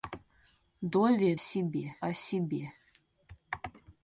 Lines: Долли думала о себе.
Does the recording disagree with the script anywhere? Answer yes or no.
yes